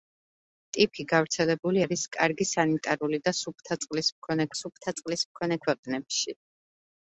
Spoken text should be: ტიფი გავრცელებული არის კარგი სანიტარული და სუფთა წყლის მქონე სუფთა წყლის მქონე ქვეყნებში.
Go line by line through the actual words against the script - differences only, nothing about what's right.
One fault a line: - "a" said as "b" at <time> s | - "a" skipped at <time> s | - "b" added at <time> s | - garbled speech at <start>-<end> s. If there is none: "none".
none